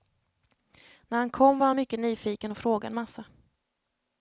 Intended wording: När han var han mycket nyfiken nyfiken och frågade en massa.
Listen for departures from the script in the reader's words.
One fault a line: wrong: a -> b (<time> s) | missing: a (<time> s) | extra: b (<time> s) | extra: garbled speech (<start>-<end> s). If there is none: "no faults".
extra: kom (1.3 s)
missing: nyfiken (2.5 s)